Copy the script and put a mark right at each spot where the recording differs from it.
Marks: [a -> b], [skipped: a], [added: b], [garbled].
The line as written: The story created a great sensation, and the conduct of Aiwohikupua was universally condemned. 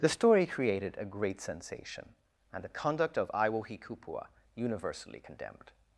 The story created a great sensation, and the conduct of Aiwohikupua [skipped: was] universally condemned.